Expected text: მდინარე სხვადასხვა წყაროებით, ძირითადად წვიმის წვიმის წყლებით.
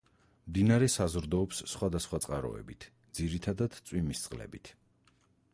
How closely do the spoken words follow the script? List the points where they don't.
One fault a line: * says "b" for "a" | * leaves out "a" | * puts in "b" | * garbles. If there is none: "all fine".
* puts in "საზრდოობს"
* leaves out "წვიმის"